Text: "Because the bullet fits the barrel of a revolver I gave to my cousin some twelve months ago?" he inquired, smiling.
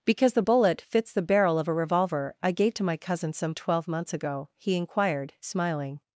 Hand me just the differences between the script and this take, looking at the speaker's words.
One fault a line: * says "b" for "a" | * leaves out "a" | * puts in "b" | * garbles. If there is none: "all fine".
all fine